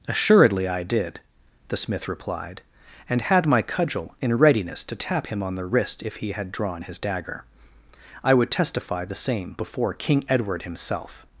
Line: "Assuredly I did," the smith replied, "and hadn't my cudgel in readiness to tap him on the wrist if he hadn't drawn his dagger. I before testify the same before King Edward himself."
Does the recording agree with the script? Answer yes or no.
no